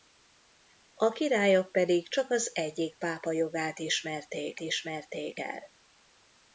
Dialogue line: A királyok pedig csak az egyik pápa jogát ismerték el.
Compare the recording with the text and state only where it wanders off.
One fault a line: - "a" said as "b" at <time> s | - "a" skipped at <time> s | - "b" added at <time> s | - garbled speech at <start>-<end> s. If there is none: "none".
- "ismerték" added at 4.6 s